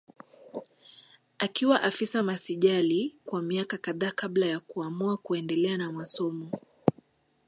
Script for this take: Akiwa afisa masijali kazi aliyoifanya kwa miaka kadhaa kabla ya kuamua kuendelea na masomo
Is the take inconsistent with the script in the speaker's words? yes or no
yes